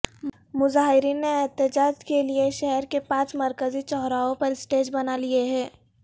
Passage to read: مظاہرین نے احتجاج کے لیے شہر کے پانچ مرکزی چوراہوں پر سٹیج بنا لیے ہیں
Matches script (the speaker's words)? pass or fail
pass